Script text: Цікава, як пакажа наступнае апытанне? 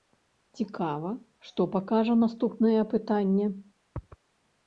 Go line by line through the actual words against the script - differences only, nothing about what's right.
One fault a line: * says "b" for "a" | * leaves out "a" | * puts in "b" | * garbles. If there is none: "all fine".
* says "што" for "як"